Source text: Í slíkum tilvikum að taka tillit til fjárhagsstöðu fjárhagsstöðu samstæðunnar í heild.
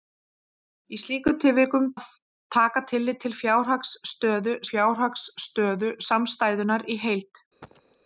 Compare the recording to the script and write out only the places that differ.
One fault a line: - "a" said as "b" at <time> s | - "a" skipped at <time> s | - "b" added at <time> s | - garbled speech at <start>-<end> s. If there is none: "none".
none